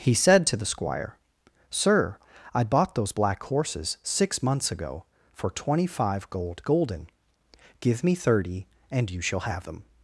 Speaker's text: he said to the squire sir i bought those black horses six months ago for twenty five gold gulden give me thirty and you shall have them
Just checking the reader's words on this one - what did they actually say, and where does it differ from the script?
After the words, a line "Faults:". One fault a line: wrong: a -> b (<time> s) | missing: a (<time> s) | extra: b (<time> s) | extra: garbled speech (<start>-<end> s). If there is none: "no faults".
he said to the squire sir i bought those black horses six months ago for twenty five gold gulden give me thirty and you shall have them
Faults:
no faults